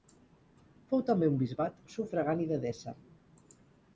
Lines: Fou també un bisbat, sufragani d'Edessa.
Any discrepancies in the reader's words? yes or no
no